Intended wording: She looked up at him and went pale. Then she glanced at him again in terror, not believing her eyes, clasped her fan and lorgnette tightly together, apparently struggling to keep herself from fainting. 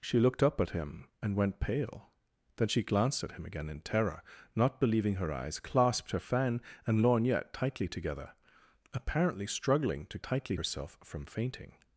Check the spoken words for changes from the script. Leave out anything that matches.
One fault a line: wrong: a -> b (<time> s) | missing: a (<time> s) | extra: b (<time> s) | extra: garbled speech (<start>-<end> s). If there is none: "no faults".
wrong: keep -> tightly (10.2 s)